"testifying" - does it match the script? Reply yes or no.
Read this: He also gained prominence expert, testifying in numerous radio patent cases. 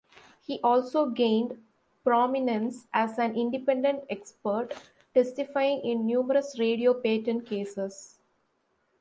yes